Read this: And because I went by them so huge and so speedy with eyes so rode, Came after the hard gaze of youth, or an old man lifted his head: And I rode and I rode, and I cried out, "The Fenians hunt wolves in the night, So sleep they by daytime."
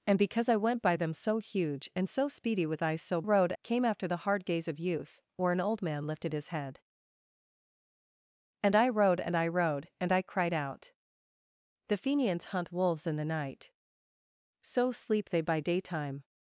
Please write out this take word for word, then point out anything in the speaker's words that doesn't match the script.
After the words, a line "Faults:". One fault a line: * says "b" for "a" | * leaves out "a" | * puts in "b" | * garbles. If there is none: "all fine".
And because I went by them so huge and so speedy with eyes so rode, Came after the hard gaze of youth, or an old man lifted his head: And I rode and I rode, and I cried out, "The Fenians hunt wolves in the night, So sleep they by daytime."
Faults:
all fine